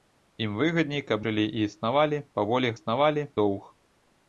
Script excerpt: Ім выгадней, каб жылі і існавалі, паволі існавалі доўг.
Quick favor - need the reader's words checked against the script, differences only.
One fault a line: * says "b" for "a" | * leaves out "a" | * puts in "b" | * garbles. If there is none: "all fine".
all fine